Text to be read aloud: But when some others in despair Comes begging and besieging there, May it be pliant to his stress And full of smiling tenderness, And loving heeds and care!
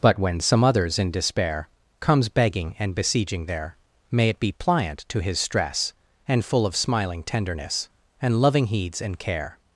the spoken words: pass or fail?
pass